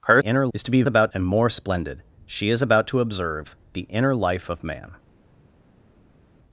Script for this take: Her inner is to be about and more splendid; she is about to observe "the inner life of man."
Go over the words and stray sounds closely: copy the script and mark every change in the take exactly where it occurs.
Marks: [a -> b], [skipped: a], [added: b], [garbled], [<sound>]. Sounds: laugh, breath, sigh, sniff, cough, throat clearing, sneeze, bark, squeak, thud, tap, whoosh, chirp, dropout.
Her inner is to be about and more splendid; she is about to observe "the inner life of man."